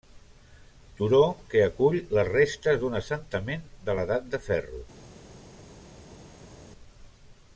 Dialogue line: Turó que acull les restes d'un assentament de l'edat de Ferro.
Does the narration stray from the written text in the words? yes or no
no